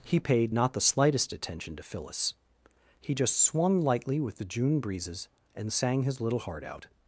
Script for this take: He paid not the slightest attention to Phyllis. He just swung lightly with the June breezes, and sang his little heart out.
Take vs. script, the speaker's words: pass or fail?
pass